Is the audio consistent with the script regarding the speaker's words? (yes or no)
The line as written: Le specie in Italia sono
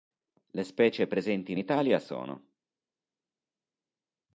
no